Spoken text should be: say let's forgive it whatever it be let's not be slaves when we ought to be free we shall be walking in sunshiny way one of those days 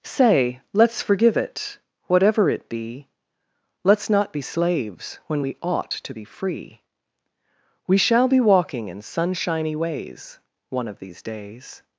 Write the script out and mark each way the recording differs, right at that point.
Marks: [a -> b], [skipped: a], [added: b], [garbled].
say let's forgive it whatever it be let's not be slaves when we ought to be free we shall be walking in sunshiny [way -> ways] one of [those -> these] days